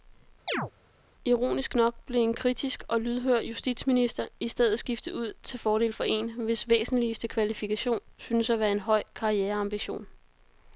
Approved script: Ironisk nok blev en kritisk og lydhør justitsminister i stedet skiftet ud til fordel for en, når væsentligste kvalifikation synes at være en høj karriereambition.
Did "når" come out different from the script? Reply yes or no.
yes